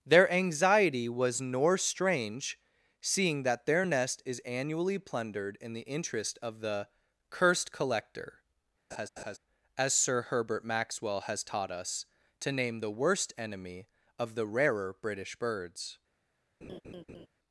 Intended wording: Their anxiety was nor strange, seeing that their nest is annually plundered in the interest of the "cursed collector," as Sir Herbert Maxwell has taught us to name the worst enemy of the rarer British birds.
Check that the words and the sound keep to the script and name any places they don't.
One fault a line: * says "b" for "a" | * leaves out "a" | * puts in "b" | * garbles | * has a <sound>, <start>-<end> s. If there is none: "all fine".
* has a laugh, 8.9-9.4 s
* has a laugh, 16.6-17.3 s